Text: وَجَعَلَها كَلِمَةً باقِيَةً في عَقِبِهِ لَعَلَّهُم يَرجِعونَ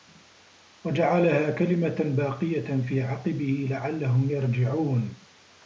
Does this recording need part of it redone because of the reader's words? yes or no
no